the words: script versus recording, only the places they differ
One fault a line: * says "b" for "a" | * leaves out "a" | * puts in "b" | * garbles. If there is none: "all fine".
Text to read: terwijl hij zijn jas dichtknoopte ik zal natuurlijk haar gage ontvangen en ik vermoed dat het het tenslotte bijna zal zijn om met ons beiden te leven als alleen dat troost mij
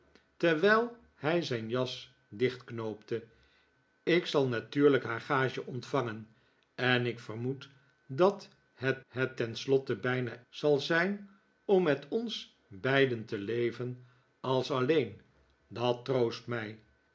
all fine